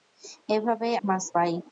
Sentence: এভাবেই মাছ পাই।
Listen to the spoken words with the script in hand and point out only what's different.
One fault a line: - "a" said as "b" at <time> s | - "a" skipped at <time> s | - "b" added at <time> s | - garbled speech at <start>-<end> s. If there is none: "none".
none